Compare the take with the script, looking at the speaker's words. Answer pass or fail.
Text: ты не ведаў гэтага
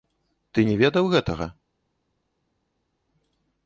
pass